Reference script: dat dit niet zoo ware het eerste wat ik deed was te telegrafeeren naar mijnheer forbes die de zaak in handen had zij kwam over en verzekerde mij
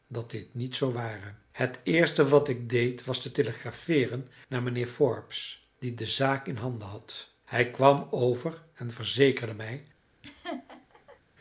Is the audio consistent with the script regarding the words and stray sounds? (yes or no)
no